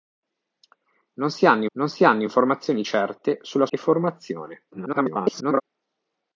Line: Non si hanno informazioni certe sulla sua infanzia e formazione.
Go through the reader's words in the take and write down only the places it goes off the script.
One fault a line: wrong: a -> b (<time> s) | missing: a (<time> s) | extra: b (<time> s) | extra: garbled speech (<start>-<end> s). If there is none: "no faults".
extra: non si hanno (1.7 s)
missing: sua infanzia (3.7 s)
extra: garbled speech (4.7-5.6 s)